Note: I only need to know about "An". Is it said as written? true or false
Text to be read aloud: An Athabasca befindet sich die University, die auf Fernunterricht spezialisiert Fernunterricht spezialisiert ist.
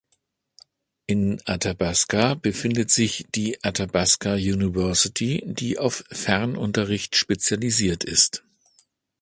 false